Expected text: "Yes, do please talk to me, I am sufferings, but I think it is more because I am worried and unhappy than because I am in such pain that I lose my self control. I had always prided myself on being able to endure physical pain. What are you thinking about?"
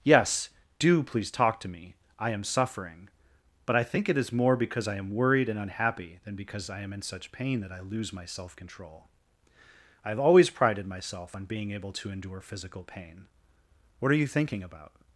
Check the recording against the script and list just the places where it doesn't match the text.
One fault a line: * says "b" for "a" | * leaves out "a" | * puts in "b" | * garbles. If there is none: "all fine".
* says "suffering" for "sufferings"
* says "have" for "had"